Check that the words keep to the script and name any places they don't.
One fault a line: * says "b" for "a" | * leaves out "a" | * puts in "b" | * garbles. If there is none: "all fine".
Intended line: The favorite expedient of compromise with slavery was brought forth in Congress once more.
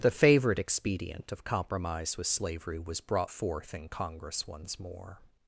all fine